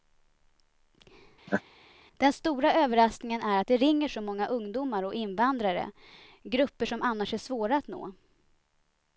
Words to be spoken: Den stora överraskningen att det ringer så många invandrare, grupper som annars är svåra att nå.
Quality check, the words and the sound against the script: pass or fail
fail